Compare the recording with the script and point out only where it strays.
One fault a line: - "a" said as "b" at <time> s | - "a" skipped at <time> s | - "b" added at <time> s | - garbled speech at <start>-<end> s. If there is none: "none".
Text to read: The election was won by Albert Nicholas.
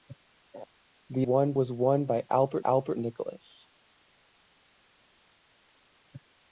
- "election" said as "won" at 1.2 s
- "Albert" added at 2.6 s